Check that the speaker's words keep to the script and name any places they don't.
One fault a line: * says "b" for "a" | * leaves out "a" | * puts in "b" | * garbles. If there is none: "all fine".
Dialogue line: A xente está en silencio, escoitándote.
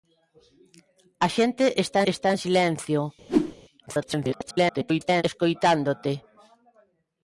* puts in "está"
* garbles